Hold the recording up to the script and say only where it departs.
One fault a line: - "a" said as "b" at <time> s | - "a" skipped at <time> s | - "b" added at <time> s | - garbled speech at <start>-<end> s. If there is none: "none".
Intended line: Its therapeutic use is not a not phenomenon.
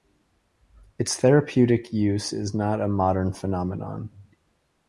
- "not" said as "modern" at 2.9 s